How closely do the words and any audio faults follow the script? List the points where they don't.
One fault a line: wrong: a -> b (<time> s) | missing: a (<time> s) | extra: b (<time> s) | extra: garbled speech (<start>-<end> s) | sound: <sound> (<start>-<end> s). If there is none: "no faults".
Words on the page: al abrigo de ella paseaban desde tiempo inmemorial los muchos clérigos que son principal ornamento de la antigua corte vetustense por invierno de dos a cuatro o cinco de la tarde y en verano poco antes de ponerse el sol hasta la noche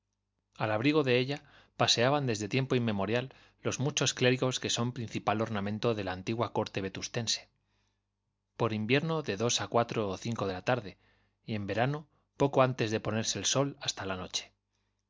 no faults